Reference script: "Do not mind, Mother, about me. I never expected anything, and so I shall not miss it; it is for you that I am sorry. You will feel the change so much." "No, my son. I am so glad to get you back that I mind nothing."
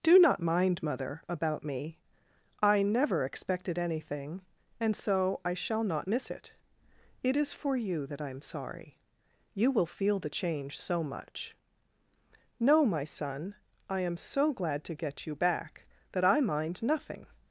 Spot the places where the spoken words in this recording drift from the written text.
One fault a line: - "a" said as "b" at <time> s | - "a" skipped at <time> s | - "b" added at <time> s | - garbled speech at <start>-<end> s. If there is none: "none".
none